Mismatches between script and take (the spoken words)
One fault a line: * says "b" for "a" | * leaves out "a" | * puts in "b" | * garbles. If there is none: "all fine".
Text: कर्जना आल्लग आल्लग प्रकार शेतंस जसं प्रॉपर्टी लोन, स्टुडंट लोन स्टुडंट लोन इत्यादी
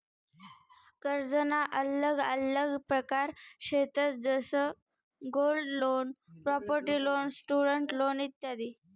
* says "गोल्ड" for "प्रॉपर्टी"
* says "प्रॉपर्टी" for "स्टुडंट"